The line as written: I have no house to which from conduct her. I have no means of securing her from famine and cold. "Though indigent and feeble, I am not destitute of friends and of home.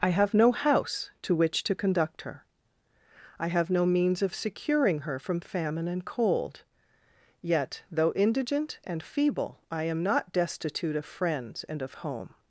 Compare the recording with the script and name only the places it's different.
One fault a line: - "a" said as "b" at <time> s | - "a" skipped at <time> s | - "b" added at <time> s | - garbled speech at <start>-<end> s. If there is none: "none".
- "from" said as "to" at 1.6 s
- "Yet" added at 7.4 s